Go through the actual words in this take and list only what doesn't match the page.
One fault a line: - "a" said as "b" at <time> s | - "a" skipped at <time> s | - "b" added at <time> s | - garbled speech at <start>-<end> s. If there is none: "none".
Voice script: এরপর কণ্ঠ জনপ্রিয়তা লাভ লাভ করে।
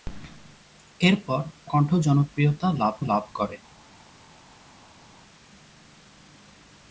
none